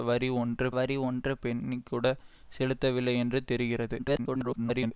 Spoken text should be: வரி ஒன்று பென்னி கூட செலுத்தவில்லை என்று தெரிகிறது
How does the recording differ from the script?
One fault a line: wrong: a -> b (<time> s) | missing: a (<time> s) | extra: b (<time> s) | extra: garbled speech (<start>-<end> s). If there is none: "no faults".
extra: வரி ஒன்று (0.7 s)
extra: garbled speech (4.0-4.9 s)